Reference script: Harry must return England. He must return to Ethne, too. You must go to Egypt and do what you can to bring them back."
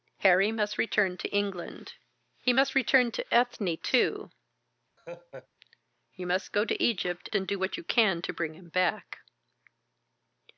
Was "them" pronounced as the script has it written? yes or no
no